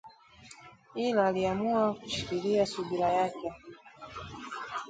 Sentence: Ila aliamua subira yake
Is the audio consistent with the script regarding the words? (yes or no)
no